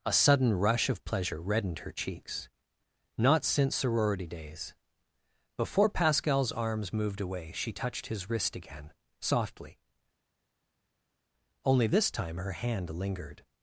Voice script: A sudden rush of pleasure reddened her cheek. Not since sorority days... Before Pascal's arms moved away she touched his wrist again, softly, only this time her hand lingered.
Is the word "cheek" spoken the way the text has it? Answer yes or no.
no